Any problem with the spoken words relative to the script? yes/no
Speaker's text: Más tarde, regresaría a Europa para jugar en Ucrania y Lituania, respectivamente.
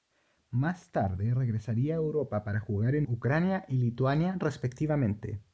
no